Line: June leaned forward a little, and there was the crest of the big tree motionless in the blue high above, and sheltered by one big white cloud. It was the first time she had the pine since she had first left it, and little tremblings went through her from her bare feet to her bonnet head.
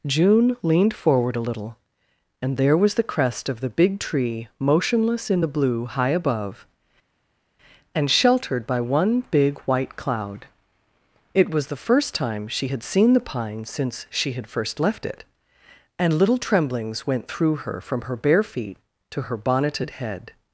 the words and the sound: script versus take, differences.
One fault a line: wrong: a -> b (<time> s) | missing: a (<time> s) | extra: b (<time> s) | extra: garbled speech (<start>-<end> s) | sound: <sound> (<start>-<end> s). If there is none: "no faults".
extra: seen (12.8 s)
wrong: bonnet -> bonneted (19.3 s)